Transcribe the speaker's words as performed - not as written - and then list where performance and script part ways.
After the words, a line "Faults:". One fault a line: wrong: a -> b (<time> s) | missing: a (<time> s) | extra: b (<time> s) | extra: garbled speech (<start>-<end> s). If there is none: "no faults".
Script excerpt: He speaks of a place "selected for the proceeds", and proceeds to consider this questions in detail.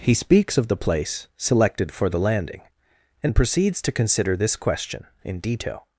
He speaks of the place "selected for the landing", and proceeds to consider this question in detail.
Faults:
wrong: a -> the (0.7 s)
wrong: proceeds -> landing (2.2 s)
wrong: questions -> question (4.6 s)